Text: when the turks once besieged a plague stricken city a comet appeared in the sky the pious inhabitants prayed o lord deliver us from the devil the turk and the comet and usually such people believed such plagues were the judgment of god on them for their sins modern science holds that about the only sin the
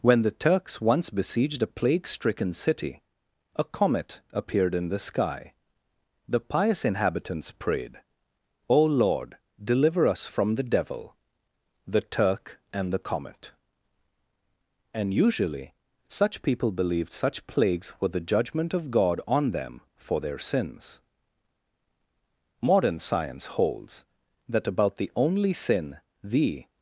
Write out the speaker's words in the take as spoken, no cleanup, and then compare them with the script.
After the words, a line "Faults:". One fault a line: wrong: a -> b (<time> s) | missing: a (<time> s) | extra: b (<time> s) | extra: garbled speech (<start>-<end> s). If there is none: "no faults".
when the turks once besieged a plague stricken city a comet appeared in the sky the pious inhabitants prayed o lord deliver us from the devil the turk and the comet and usually such people believed such plagues were the judgment of god on them for their sins modern science holds that about the only sin the
Faults:
no faults